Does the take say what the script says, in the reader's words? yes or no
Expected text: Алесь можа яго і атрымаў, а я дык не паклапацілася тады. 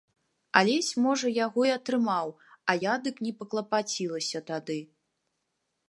yes